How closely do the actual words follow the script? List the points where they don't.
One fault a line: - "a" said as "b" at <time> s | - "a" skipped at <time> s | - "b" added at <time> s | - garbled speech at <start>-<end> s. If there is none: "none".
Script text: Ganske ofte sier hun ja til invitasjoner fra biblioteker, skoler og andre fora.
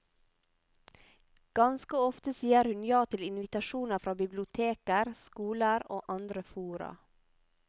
none